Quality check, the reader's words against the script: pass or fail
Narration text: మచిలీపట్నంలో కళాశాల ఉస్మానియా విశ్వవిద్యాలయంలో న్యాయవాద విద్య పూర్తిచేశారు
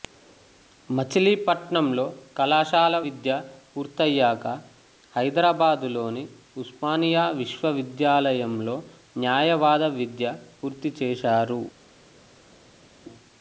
fail